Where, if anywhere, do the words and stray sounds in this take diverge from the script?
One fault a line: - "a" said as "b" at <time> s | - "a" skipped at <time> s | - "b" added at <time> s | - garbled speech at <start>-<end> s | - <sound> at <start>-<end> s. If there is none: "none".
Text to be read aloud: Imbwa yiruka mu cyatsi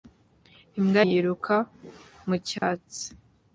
- dropout at 2.6-2.6 s